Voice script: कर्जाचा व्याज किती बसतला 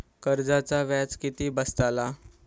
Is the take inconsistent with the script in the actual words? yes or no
no